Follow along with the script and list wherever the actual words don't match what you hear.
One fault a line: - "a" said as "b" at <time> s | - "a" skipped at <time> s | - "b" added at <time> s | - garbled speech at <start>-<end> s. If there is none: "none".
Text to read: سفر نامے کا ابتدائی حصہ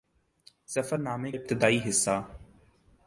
- "کا" skipped at 1.3 s